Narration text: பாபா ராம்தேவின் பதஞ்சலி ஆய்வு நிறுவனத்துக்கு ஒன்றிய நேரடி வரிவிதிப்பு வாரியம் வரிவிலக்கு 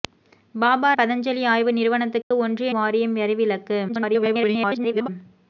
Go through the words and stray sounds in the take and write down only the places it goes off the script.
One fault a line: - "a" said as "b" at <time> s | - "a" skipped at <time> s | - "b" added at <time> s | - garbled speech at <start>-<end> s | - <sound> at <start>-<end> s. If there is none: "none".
- "ராம்தேவின்" skipped at 0.9 s
- dropout at 2.2-2.3 s
- "நேரடி வரிவிதிப்பு" skipped at 2.7 s
- garbled speech at 3.9-5.1 s